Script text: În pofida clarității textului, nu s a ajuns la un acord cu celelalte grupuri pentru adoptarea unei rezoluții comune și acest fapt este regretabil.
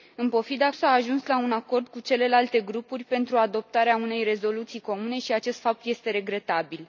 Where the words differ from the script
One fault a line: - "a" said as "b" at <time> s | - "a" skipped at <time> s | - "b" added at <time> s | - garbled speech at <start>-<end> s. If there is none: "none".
- "clarității textului nu" skipped at 0.7 s